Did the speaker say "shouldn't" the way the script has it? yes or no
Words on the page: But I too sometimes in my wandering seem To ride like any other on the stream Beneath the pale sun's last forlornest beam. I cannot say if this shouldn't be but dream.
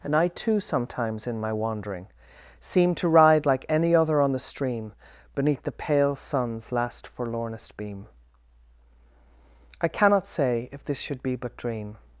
no